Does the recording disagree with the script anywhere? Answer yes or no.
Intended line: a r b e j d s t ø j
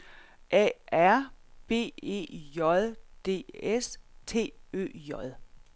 no